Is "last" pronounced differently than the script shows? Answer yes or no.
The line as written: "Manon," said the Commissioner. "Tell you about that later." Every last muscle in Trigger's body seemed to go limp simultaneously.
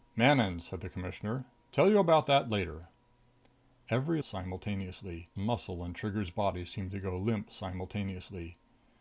yes